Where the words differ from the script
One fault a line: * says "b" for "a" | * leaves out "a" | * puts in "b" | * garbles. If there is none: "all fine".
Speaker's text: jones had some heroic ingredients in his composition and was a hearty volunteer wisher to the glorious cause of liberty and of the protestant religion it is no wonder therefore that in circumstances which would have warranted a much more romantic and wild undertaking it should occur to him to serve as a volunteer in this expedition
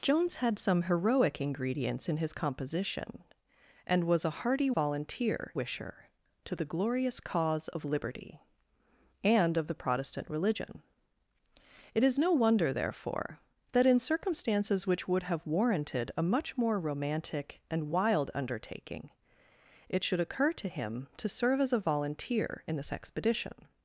all fine